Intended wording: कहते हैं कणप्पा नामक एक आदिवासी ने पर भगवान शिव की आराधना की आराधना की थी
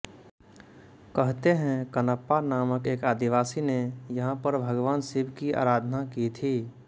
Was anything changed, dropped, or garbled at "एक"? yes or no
no